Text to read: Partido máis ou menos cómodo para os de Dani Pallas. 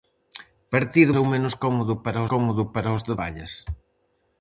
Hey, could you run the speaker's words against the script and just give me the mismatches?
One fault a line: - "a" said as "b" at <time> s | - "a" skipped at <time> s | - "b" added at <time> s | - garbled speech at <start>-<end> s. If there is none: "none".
- "máis" skipped at 1.1 s
- "cómodo para" added at 2.3 s
- "Dani" skipped at 3.1 s